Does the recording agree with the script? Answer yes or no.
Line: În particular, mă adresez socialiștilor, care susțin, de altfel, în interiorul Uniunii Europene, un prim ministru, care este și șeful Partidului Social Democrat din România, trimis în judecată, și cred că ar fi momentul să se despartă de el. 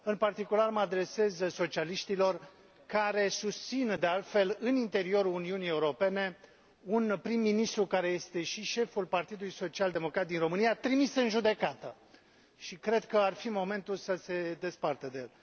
yes